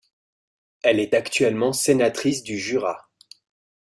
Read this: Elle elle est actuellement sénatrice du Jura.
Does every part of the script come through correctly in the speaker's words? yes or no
no